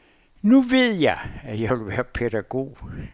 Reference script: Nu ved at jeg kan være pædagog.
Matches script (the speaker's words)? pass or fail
fail